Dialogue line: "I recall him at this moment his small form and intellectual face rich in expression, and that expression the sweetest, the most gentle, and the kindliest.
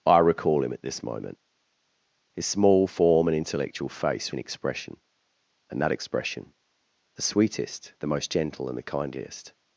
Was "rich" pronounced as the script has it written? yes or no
no